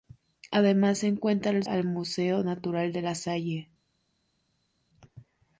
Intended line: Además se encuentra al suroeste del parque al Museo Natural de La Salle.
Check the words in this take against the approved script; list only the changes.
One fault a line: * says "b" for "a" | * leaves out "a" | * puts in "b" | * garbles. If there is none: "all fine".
* leaves out "suroeste del parque"